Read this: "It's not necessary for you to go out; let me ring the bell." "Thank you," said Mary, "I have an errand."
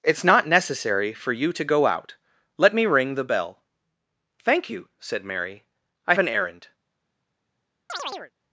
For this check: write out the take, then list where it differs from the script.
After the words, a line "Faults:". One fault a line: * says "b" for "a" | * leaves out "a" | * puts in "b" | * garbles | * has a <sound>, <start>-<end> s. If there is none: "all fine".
"It's not necessary for you to go out; let me ring the bell." "Thank you," said Mary, "I an errand."
Faults:
* leaves out "have"
* has a chirp, 7.9-8.3 s